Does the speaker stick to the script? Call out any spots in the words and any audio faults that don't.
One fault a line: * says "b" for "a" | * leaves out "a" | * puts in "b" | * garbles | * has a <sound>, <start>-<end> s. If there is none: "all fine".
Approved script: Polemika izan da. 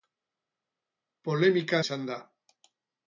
all fine